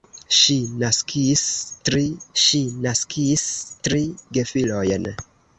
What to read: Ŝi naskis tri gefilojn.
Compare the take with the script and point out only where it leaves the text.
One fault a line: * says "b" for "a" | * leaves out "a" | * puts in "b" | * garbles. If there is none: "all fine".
* puts in "ŝi naskis tri"